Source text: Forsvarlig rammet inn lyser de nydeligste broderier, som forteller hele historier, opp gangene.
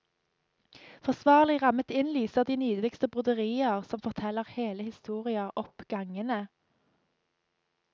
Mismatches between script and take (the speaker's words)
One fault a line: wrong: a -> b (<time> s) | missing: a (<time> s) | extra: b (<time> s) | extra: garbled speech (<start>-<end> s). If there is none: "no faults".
no faults